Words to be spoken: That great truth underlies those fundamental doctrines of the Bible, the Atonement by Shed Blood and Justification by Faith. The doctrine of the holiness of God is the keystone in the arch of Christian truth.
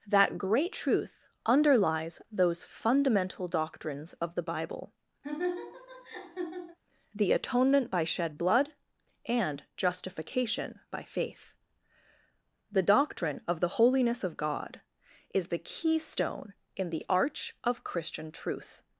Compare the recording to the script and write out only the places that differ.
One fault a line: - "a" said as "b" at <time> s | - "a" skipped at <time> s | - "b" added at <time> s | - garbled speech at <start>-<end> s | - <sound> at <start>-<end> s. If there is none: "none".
- laugh at 5.2-6.8 s